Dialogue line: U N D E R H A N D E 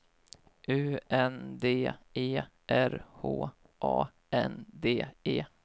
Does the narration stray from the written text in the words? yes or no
no